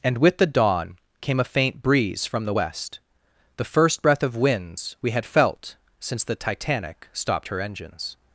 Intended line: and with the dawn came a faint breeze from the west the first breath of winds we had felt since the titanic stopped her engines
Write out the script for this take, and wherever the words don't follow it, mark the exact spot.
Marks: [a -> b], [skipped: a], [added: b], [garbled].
and with the dawn came a faint breeze from the west the first breath of winds we had felt since the titanic stopped her engines